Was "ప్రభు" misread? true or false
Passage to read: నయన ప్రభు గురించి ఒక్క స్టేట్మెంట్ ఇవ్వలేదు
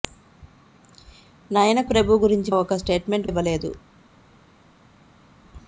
false